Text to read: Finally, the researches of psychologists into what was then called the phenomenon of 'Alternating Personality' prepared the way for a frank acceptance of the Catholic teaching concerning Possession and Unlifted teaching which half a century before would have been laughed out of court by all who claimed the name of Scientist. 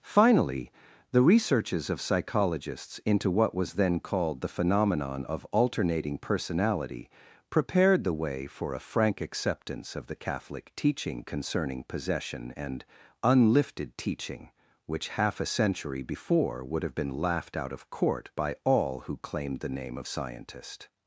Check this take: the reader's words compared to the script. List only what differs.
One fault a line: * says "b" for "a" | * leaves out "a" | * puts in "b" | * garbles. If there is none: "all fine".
all fine